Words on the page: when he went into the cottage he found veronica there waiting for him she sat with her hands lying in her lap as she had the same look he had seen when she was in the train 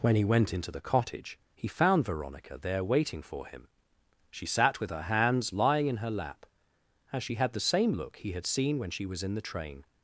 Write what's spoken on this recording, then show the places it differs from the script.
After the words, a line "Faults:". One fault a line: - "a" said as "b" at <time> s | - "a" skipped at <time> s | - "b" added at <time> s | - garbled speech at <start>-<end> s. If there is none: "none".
when he went into the cottage he found veronica there waiting for him she sat with her hands lying in her lap as she had the same look he had seen when she was in the train
Faults:
none